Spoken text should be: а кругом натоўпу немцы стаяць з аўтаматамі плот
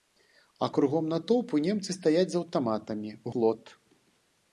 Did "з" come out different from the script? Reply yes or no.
no